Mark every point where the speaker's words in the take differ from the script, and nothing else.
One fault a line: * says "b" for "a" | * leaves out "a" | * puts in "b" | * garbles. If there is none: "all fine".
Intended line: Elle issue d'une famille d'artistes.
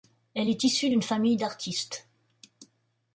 * puts in "est"